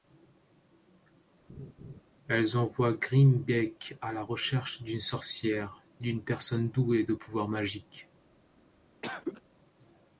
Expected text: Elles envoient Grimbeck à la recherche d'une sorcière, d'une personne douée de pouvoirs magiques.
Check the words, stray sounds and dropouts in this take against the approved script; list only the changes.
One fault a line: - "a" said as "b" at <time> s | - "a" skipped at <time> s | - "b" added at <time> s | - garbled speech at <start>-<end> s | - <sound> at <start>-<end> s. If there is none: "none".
- laugh at 1.5-2.0 s
- cough at 9.0-9.4 s